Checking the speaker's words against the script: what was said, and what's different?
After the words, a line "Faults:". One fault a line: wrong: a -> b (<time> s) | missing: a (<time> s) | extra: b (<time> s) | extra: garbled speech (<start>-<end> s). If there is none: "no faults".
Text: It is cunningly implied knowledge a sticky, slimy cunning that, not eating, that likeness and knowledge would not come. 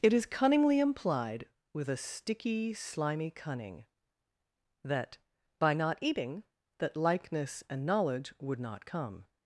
It is cunningly implied with a sticky, slimy cunning that, by not eating, that likeness and knowledge would not come.
Faults:
wrong: knowledge -> with (1.7 s)
extra: by (5.6 s)